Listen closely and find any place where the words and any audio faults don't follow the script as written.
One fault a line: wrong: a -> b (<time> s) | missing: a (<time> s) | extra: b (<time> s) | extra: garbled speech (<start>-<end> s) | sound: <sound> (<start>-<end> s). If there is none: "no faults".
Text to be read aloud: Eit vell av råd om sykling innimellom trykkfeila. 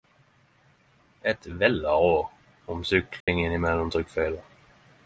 sound: dropout (3.2-3.3 s)